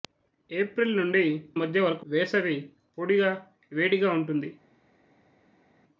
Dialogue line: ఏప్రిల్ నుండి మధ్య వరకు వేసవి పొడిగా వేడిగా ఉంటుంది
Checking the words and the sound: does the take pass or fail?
pass